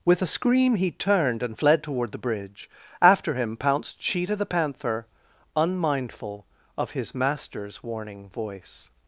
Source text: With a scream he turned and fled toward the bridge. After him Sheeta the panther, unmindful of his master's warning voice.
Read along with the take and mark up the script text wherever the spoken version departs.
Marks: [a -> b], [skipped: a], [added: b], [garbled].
With a scream he turned and fled toward the bridge. After him [added: pounced] Sheeta the panther, unmindful of his master's warning voice.